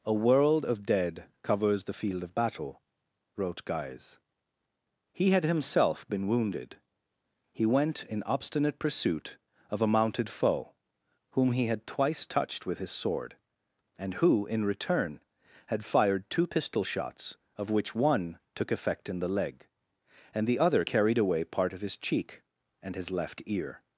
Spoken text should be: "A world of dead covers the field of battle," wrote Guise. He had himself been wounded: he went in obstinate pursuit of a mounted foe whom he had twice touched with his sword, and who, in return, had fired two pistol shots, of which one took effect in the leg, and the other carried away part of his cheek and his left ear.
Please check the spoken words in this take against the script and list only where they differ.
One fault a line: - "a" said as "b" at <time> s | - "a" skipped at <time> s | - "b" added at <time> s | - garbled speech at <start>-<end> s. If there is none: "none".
none